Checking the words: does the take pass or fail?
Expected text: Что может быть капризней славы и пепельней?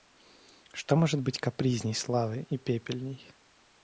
pass